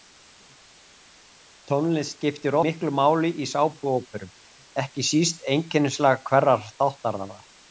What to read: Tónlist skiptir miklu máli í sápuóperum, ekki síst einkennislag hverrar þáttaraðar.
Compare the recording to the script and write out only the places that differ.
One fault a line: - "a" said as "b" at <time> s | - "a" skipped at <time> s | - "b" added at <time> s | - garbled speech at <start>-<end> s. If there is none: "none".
none